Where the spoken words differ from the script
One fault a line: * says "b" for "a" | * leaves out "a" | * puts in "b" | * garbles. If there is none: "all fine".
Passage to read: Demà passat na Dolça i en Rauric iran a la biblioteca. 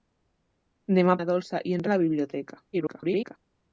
* leaves out "passat"
* leaves out "Rauric iran"
* garbles